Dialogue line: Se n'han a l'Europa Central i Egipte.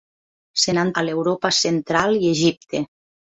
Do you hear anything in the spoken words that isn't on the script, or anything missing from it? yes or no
no